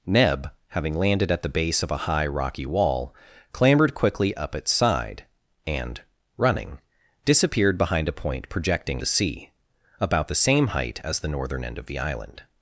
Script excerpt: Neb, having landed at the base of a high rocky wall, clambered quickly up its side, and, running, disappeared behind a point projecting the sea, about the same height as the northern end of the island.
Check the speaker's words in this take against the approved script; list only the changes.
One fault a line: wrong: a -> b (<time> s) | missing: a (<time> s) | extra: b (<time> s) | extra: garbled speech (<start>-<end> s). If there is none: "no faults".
no faults